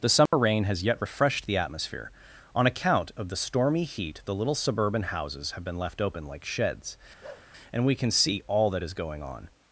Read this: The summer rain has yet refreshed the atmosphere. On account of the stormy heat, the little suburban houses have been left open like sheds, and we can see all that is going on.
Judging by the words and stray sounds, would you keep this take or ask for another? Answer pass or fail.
fail